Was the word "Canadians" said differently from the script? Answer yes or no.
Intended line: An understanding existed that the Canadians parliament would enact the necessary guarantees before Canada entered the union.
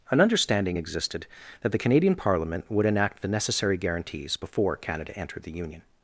yes